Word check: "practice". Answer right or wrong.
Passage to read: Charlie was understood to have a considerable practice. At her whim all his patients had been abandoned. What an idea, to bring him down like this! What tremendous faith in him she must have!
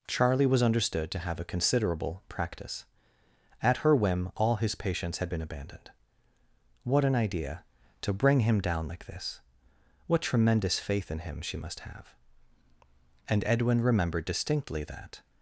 right